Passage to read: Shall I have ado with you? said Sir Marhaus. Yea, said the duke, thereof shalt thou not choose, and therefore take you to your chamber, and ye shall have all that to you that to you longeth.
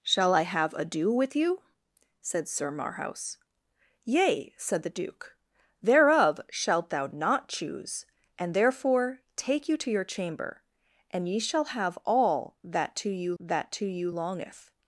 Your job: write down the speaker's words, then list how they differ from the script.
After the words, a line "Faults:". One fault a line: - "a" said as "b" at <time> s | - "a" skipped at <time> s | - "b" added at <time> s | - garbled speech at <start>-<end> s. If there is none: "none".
Shall I have ado with you? said Sir Marhaus. Yea, said the duke, thereof shalt thou not choose, and therefore take you to your chamber, and ye shall have all that to you that to you longeth.
Faults:
none